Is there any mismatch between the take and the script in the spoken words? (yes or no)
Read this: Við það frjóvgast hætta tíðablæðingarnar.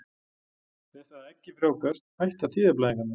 yes